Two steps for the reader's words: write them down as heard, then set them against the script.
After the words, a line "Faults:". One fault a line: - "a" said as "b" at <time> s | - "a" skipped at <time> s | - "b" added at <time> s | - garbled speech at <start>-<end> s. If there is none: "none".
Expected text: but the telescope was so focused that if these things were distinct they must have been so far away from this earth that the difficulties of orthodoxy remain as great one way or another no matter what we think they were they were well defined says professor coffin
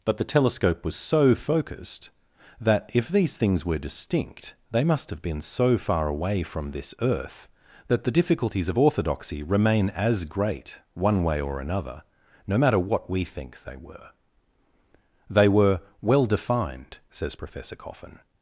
but the telescope was so focused that if these things were distinct they must have been so far away from this earth that the difficulties of orthodoxy remain as great one way or another no matter what we think they were they were well defined says professor coffin
Faults:
none